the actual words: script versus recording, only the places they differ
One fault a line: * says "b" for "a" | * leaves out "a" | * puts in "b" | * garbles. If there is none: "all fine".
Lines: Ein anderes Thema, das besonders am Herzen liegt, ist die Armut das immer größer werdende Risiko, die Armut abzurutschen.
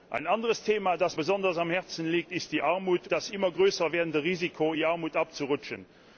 all fine